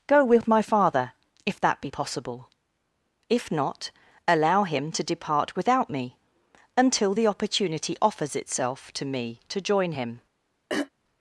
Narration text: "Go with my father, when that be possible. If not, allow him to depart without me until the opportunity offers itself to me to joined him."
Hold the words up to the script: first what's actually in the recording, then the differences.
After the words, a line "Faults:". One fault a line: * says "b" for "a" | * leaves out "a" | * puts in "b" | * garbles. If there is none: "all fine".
"Go with my father, if that be possible. If not, allow him to depart without me until the opportunity offers itself to me to join him."
Faults:
* says "if" for "when"
* says "join" for "joined"